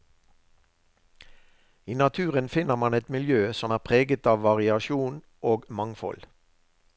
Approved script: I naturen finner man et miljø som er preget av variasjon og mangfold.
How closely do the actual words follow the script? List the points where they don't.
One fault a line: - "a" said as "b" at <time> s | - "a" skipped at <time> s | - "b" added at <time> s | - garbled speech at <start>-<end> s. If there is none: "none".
none